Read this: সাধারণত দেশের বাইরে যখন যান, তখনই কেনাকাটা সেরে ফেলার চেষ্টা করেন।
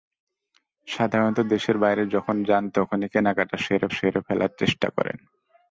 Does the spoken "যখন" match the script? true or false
true